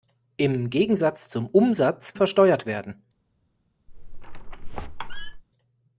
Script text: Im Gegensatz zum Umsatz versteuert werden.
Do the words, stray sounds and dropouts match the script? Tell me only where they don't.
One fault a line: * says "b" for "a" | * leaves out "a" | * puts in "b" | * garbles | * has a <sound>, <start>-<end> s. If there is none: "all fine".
* has a squeak, 3.9-5.4 s